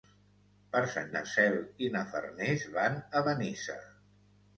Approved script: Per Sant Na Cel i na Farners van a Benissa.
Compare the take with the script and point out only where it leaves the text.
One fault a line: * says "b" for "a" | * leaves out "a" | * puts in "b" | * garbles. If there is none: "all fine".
all fine